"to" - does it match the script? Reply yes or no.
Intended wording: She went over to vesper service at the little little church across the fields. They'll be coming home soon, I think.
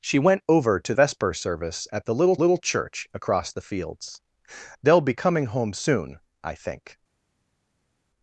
yes